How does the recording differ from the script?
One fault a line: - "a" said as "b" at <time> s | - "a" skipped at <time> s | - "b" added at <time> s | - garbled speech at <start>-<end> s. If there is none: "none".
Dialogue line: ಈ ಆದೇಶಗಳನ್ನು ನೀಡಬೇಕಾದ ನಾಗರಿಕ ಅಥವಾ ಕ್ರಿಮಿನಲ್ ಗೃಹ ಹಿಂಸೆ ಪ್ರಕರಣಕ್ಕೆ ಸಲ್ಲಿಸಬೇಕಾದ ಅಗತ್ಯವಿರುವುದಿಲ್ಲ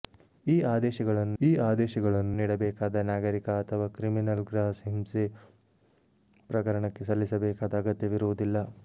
- "ಈ ಆದೇಶಗಳನ್ನು" added at 1.4 s